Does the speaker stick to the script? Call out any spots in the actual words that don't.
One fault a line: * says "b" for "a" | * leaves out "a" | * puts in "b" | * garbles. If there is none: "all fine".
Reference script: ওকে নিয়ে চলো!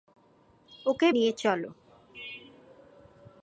all fine